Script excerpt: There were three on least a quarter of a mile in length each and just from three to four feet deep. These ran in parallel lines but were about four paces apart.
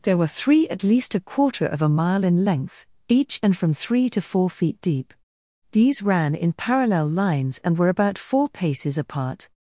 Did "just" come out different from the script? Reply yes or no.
yes